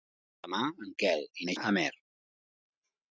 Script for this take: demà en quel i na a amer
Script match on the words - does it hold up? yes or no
yes